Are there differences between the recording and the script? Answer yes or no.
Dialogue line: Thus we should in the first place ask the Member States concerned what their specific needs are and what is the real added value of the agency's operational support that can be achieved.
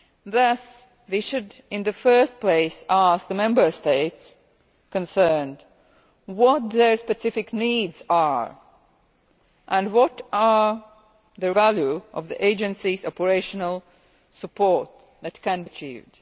yes